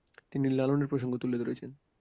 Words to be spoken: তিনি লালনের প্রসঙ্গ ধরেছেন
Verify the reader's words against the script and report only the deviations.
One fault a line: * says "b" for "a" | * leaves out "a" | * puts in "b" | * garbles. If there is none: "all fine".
* puts in "তুলে"